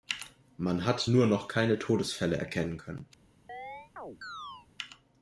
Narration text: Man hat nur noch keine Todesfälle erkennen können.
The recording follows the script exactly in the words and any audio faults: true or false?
false